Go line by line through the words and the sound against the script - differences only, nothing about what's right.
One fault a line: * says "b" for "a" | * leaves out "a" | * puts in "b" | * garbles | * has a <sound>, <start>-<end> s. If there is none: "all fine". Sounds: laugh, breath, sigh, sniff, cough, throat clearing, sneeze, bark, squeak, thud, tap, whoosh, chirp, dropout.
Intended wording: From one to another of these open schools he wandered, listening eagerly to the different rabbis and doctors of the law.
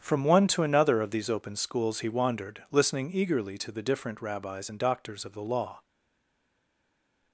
all fine